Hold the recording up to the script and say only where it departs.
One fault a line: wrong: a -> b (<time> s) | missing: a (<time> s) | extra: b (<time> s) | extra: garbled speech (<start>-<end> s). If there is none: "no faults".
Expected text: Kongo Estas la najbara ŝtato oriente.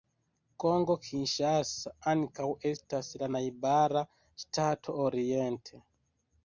extra: Kinŝasa ankaŭ (1.1 s)